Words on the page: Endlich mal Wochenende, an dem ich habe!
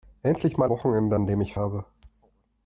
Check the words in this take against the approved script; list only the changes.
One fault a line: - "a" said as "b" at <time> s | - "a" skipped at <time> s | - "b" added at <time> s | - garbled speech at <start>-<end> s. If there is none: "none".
none